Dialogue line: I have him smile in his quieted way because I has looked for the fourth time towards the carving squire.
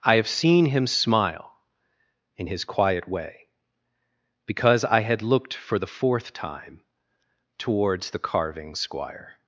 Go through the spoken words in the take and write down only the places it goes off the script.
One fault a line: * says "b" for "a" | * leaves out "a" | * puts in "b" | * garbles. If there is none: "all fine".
* puts in "seen"
* says "quiet" for "quieted"
* says "had" for "has"